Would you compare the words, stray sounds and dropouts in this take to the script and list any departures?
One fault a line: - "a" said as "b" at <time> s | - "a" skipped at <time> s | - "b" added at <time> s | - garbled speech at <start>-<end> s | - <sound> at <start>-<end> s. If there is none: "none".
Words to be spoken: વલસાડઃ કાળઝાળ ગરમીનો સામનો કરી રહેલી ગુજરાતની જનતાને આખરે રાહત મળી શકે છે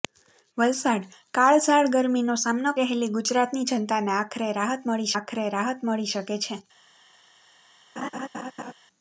- "કરી" skipped at 2.7 s
- "આખરે રાહત મળી" added at 5.2 s
- laugh at 8.0-8.7 s